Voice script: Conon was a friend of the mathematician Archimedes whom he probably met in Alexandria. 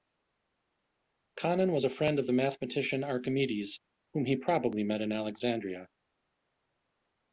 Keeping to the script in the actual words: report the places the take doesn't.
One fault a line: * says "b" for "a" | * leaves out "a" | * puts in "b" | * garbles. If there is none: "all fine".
all fine